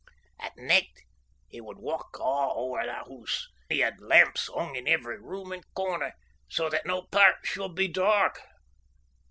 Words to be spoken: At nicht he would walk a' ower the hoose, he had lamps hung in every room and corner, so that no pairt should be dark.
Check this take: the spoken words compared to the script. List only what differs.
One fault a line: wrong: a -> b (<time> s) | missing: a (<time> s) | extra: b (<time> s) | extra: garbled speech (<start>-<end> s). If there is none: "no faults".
no faults